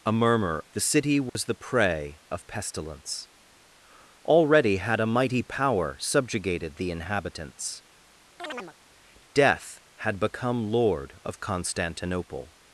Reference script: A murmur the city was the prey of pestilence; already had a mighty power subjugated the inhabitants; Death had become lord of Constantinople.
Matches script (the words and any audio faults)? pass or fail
fail